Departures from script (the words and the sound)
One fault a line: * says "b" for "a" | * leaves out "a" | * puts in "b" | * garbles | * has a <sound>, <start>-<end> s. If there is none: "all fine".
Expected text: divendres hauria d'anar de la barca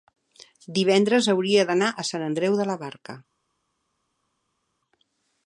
* puts in "a sant andreu"